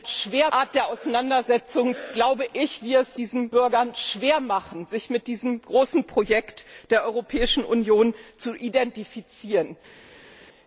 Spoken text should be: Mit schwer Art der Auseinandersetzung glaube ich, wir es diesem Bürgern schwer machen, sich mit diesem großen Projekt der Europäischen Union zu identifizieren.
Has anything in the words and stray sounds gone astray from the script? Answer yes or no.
no